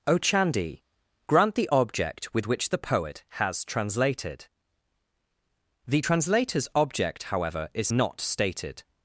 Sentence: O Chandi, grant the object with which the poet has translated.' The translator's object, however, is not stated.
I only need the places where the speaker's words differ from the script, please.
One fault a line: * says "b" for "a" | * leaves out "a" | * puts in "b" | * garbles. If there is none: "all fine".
all fine